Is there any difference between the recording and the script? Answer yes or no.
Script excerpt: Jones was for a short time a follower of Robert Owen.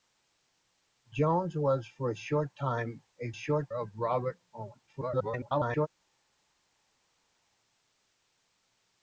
yes